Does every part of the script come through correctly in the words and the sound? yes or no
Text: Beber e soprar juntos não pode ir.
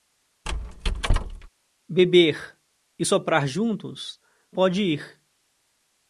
no